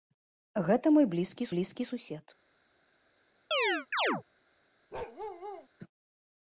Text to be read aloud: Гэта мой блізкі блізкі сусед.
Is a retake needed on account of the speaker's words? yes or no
no